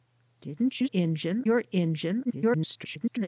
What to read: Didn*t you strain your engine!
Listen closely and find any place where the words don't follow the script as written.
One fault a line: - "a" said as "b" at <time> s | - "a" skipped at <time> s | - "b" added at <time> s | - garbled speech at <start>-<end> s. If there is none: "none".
- "strain" said as "engine" at 0.9 s
- garbled speech at 2.3-3.3 s